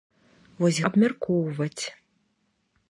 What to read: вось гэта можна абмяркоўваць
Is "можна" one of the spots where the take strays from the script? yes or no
yes